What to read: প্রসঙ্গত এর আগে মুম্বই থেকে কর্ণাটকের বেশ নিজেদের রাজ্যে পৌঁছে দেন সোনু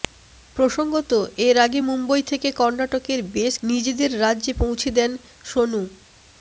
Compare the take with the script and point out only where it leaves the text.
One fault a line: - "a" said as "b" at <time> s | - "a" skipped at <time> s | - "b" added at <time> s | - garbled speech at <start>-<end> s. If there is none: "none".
none